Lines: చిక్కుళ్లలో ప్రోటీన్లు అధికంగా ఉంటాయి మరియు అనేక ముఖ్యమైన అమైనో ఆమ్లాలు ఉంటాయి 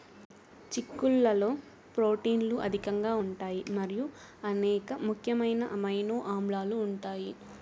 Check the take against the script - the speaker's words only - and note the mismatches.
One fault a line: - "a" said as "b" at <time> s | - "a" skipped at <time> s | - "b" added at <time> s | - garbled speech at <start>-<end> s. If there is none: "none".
none